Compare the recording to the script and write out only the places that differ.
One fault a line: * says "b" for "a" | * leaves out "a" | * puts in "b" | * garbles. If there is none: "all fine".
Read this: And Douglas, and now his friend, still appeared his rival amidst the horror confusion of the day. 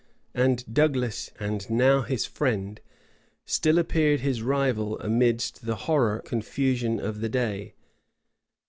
all fine